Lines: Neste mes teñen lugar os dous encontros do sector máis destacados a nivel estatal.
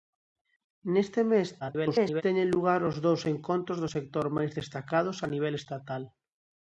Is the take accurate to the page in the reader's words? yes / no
no